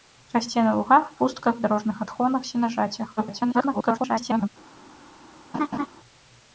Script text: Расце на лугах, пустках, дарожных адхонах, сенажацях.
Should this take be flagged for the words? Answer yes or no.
yes